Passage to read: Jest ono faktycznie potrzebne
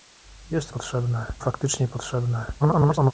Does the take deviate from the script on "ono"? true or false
true